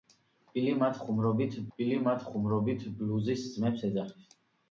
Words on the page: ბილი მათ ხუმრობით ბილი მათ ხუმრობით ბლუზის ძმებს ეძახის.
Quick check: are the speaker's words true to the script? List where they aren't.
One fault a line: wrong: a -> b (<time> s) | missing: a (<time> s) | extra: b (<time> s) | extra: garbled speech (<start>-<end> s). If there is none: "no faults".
no faults